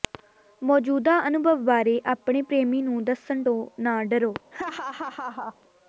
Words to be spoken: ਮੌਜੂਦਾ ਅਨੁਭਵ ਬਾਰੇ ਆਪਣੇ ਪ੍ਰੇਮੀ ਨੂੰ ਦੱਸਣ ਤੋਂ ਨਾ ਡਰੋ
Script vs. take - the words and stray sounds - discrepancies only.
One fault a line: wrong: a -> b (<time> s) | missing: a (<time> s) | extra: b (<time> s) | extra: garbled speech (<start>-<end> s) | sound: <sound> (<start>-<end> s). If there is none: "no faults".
sound: laugh (4.5-5.6 s)